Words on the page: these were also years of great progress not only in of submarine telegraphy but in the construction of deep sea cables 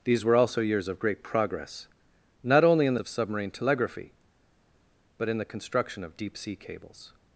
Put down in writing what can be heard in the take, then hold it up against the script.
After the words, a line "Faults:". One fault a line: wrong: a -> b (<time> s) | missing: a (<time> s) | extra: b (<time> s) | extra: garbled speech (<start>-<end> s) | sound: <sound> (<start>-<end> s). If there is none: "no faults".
these were also years of great progress not only in of submarine telegraphy but in the construction of deep sea cables
Faults:
no faults